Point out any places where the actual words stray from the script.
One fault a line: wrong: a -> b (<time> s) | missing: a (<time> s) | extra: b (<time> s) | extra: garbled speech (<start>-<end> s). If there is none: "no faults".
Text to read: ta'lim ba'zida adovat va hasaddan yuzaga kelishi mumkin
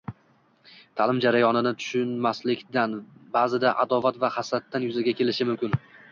extra: jarayonini tushunmaslikdan (1.2 s)